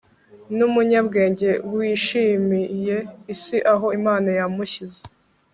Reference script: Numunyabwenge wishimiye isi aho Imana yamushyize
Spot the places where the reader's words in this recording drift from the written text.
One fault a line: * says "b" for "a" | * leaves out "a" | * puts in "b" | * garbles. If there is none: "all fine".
all fine